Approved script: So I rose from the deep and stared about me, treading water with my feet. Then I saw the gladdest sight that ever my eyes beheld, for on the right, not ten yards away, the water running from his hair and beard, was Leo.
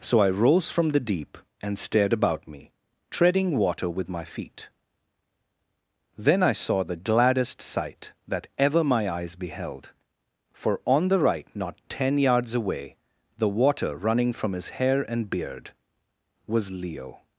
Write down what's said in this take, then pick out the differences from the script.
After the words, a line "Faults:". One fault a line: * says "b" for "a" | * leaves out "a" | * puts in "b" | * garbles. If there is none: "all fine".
So I rose from the deep and stared about me, treading water with my feet. Then I saw the gladdest sight that ever my eyes beheld, for on the right, not ten yards away, the water running from his hair and beard, was Leo.
Faults:
all fine